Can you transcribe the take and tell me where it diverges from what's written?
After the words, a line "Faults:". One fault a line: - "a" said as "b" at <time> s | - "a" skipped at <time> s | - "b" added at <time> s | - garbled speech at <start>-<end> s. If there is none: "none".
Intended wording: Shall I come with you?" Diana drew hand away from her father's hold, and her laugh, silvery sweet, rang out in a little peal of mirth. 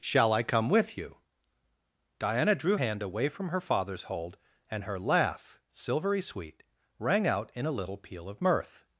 Shall I come with you?" Diana drew hand away from her father's hold, and her laugh, silvery sweet, rang out in a little peal of mirth.
Faults:
none